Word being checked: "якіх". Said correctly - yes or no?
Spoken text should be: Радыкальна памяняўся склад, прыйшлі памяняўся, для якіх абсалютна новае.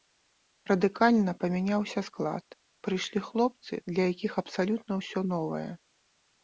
yes